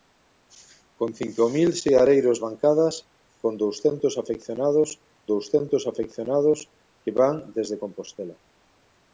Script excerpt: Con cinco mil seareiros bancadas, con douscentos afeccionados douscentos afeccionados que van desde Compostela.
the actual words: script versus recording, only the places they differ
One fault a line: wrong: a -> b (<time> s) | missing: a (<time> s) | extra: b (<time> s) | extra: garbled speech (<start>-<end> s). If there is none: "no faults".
no faults